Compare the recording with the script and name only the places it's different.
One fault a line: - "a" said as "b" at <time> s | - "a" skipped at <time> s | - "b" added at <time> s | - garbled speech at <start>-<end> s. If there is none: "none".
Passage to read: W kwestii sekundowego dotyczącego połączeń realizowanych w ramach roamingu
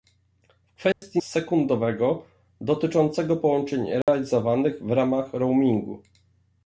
none